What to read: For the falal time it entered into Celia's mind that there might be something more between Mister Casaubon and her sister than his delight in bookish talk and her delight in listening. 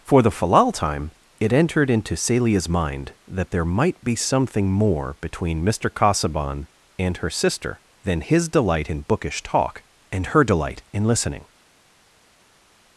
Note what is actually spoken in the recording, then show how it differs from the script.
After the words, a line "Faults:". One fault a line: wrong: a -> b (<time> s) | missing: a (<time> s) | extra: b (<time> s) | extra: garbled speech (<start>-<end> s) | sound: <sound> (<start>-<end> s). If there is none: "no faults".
For the falal time it entered into Celia's mind that there might be something more between Mister Casaubon and her sister than his delight in bookish talk and her delight in listening.
Faults:
no faults